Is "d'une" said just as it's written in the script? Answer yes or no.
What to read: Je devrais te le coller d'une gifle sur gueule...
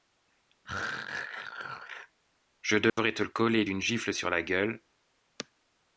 yes